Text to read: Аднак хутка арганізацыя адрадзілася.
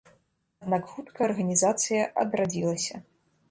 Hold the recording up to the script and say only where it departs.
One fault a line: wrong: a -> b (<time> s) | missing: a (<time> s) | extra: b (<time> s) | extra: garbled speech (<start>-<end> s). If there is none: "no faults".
no faults